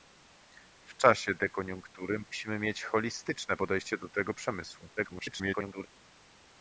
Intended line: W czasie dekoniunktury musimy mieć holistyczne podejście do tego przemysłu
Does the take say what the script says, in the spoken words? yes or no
no